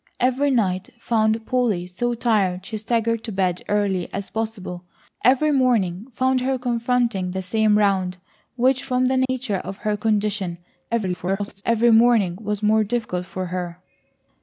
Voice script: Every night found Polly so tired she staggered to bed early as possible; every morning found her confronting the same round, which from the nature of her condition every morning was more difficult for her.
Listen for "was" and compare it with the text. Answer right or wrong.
right